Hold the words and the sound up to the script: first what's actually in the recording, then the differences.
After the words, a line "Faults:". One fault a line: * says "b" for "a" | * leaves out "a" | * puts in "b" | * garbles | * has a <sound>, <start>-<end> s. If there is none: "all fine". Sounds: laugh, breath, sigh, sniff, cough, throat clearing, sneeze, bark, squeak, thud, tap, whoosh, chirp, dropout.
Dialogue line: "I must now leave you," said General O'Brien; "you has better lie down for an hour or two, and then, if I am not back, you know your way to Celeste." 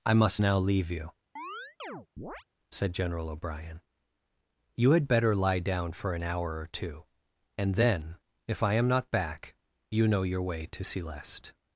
"I must now leave you," said General O'Brien; "you had better lie down for an hour or two, and then, if I am not back, you know your way to Celeste."
Faults:
* has a chirp, 1.4-2.4 s
* says "had" for "has"